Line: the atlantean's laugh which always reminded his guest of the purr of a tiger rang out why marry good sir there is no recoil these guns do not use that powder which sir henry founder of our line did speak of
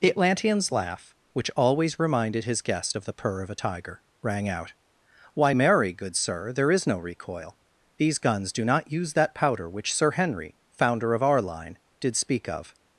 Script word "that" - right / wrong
right